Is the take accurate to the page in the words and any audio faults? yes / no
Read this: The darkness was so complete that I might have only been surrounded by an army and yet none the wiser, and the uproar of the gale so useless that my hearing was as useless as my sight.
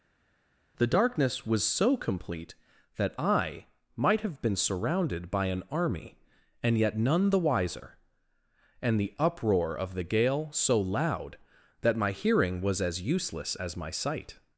no